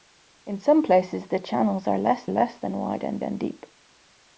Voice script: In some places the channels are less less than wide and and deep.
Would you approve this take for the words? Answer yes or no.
yes